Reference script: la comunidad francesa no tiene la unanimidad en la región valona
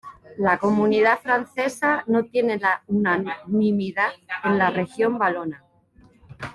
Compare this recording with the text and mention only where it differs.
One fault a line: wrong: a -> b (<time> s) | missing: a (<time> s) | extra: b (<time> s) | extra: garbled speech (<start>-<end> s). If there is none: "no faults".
no faults